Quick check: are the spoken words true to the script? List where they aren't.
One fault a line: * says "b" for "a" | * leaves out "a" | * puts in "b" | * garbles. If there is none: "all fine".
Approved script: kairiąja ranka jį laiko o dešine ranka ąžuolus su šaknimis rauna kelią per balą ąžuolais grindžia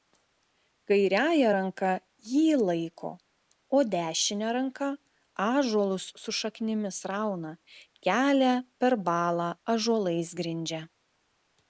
all fine